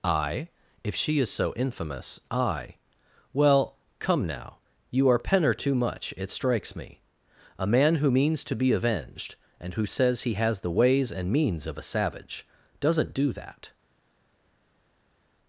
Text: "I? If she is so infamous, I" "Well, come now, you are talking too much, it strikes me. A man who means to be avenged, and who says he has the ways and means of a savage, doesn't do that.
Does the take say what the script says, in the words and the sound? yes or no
no